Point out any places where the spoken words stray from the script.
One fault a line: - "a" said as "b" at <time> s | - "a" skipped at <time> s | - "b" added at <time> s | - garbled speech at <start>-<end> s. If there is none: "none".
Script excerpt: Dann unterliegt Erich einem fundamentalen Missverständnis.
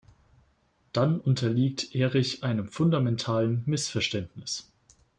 none